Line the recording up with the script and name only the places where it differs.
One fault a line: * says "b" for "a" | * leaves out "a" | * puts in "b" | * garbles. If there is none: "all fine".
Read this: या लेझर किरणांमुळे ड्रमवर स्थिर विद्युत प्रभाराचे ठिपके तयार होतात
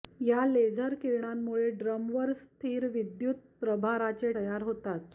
* leaves out "ठिपके"